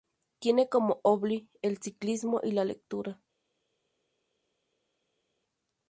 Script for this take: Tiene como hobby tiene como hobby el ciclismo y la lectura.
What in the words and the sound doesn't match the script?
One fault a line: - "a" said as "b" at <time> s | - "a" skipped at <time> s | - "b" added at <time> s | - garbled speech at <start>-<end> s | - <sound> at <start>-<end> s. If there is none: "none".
- "tiene como hobby" skipped at 1.5 s